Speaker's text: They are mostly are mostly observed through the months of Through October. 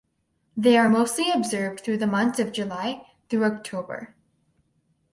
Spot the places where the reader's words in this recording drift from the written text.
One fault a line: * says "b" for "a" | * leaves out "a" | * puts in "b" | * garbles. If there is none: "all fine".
* leaves out "are mostly"
* puts in "July"